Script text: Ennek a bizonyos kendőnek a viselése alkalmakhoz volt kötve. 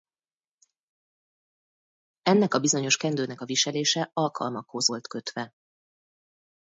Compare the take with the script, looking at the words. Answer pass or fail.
pass